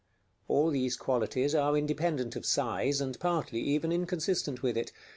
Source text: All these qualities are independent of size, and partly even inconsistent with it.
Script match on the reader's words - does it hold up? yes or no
yes